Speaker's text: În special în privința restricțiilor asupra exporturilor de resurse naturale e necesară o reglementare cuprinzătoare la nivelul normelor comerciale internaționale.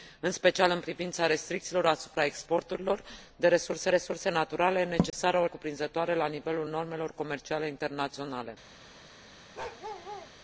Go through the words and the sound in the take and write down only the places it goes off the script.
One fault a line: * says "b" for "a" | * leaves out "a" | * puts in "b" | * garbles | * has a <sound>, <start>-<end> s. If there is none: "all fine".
* puts in "resurse"
* has a dropout, 5.1-5.1 s
* leaves out "reglementare"
* has a bark, 9.5-10.3 s